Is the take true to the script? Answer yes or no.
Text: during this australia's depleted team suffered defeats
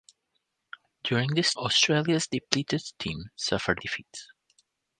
yes